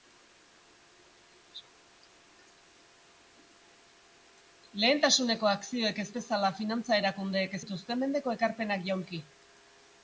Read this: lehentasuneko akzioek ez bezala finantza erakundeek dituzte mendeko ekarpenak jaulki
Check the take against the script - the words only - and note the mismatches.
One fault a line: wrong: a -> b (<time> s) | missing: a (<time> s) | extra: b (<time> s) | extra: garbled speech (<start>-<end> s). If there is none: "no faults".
no faults